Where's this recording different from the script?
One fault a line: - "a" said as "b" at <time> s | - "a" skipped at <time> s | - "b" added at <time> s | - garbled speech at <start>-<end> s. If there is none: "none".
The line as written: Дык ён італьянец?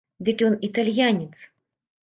none